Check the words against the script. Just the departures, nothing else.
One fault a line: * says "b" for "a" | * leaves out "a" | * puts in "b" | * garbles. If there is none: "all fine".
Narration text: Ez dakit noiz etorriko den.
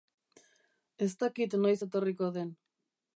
all fine